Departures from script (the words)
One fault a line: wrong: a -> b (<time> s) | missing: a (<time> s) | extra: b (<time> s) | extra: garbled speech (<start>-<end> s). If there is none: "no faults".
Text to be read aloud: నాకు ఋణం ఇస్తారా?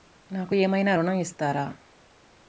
extra: ఏమైనా (0.5 s)